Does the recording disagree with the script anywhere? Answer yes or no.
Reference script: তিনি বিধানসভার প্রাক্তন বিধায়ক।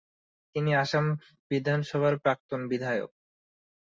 yes